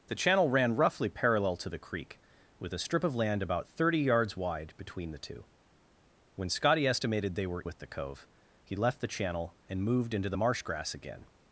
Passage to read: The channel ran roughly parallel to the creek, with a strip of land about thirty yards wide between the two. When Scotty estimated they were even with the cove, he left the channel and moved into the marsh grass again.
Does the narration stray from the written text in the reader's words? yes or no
yes